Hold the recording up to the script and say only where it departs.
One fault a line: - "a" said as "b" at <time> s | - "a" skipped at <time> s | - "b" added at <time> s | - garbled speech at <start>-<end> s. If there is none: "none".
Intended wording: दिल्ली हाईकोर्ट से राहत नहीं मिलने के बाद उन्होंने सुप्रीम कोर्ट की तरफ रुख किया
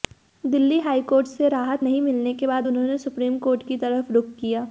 none